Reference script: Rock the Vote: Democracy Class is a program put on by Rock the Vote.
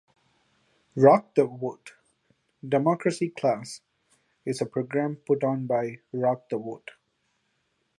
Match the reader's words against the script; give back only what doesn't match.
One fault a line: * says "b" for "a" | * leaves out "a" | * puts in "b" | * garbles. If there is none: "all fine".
all fine